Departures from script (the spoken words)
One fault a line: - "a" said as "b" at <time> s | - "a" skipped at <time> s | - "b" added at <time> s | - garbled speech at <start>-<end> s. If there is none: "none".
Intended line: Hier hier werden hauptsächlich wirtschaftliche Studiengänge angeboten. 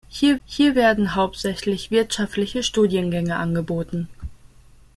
none